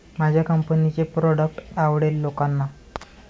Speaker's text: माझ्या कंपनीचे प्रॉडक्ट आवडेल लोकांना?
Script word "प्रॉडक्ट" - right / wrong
right